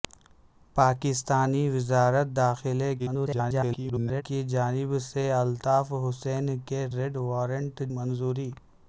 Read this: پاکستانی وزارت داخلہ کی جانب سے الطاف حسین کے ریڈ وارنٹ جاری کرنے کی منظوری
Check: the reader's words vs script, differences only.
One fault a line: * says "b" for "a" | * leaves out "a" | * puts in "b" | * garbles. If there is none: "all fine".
* garbles
* leaves out "جاری کرنے کی"